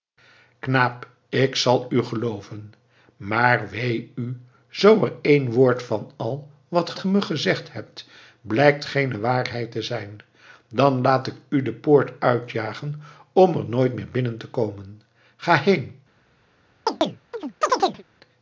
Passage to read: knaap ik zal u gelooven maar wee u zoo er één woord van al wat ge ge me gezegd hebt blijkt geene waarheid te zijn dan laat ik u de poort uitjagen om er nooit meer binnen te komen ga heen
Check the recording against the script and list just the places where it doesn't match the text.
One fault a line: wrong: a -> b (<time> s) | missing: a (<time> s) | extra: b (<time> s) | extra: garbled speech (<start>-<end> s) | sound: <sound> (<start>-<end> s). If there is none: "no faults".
sound: chirp (16.9-18.0 s)